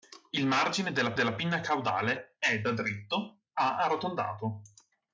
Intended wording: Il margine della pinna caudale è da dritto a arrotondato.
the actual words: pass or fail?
fail